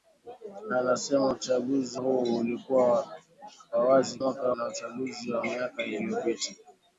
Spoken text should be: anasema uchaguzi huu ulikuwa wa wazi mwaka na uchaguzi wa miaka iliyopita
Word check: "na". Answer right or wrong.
right